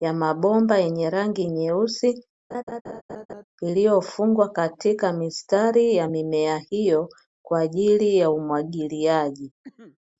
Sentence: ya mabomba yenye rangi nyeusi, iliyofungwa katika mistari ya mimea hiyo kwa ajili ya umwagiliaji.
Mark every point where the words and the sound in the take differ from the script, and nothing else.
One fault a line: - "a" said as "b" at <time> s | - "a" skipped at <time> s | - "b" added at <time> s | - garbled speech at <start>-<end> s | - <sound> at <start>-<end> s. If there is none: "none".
- laugh at 2.5-3.4 s
- cough at 9.6-10.0 s